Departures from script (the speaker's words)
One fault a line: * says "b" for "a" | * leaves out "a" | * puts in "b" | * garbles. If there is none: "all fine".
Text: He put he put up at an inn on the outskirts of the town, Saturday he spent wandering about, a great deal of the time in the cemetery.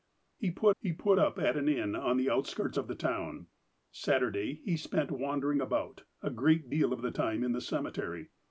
all fine